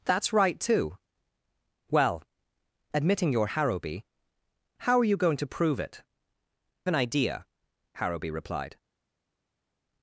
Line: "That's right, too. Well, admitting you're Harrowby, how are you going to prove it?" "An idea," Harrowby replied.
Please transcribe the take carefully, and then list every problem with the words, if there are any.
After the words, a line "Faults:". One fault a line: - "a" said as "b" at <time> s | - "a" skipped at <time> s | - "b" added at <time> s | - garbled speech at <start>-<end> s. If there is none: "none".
"That's right, too. Well, admitting you're Harrowby, how are you going to prove it?" "An idea," Harrowby replied.
Faults:
none